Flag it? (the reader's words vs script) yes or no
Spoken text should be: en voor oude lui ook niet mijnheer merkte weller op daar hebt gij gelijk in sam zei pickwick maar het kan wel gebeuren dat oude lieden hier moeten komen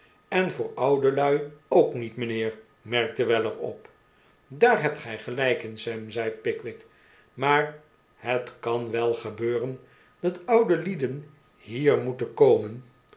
no